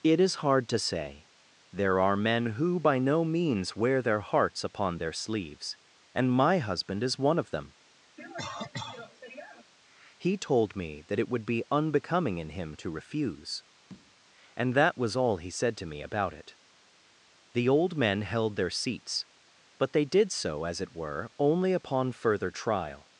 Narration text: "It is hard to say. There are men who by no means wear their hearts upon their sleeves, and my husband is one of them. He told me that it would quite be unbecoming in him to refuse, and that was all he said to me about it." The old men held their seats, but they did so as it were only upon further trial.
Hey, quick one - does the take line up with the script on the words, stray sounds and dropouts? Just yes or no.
no